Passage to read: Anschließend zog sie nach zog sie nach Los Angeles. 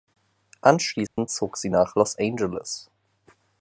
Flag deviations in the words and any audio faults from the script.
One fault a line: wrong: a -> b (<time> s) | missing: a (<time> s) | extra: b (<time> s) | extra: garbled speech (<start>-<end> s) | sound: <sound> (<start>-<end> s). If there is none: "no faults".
sound: dropout (1.1-1.2 s)
missing: zog sie nach (1.9 s)